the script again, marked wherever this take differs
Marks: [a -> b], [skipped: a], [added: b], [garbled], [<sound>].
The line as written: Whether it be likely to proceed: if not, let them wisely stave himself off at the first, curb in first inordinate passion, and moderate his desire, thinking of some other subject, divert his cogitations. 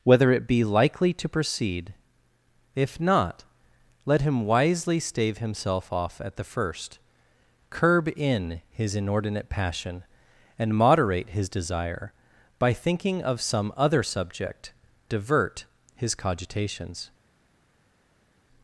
Whether it be likely to proceed: if not, let [them -> him] wisely stave himself off at the first, curb in [first -> his] inordinate passion, and moderate his desire, [added: by] thinking of some other subject, divert his cogitations.